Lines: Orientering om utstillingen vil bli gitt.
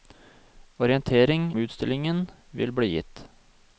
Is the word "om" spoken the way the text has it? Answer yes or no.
no